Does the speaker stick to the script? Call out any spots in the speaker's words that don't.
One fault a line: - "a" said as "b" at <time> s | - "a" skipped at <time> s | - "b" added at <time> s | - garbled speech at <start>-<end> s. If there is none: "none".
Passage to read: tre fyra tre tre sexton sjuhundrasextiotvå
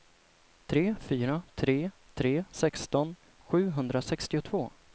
none